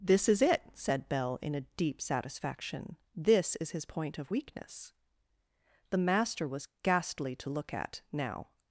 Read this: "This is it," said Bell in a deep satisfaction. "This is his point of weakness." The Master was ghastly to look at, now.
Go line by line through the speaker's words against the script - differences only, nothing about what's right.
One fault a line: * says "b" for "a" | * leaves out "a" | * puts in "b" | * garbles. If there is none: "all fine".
all fine